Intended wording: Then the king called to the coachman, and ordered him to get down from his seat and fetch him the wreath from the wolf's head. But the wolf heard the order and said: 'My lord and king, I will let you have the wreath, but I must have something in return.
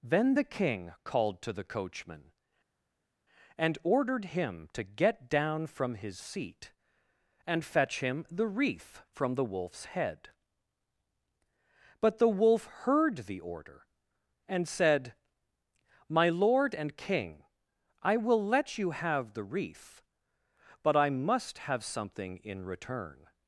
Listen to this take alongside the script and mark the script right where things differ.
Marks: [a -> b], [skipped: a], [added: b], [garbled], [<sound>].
Then the king called to the coachman, and ordered him to get down from his seat and fetch him the wreath from the wolf's head. But the wolf heard the order and said: 'My lord and king, I will let you have the wreath, but I must have something in return.